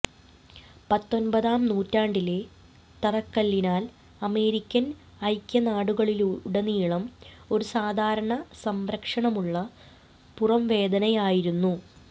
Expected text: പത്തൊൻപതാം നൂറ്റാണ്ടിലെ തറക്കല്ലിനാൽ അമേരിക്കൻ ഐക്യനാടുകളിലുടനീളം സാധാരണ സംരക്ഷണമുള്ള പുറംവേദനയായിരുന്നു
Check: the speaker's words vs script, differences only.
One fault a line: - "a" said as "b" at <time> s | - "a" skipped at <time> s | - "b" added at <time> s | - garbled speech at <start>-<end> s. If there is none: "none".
- "ഒരു" added at 7.5 s